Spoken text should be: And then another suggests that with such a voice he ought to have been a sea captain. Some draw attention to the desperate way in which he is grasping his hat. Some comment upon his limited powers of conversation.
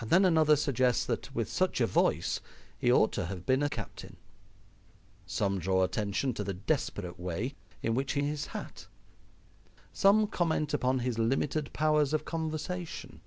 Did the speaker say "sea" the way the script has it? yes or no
no